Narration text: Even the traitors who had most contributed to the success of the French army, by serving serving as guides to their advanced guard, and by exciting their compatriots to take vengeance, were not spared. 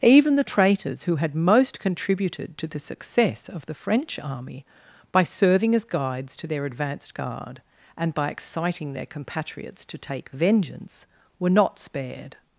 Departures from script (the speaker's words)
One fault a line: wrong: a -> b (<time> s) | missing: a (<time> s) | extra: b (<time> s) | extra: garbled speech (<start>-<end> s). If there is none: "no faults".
missing: serving (5.8 s)